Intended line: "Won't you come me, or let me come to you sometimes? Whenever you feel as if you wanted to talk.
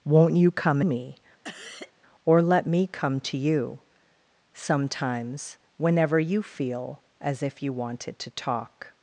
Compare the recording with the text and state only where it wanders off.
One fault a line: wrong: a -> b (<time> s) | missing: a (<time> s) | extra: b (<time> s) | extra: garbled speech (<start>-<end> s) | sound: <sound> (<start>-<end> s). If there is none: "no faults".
sound: cough (1.4-1.9 s)